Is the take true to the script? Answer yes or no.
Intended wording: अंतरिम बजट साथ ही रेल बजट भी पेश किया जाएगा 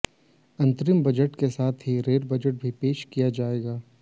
no